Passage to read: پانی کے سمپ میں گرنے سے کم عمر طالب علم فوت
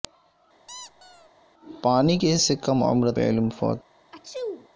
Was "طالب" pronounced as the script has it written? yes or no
no